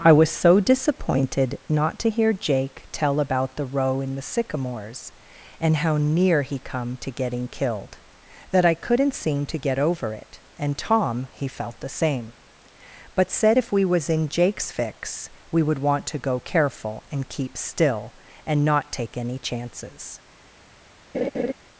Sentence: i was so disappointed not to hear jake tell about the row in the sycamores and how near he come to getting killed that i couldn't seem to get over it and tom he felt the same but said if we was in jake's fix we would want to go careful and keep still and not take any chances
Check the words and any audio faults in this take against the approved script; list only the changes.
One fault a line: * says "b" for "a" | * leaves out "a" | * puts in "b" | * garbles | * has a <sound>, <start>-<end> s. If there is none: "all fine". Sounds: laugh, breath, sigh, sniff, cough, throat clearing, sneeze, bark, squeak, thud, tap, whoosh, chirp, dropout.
* has a laugh, 21.1-21.5 s